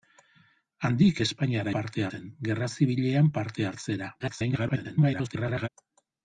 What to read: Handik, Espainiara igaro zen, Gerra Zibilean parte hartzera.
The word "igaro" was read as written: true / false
false